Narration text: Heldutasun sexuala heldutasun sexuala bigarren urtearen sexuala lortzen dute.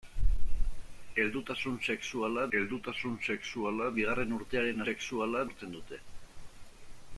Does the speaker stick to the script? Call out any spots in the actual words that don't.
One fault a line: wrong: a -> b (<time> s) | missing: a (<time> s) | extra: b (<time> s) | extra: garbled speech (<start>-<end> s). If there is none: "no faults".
no faults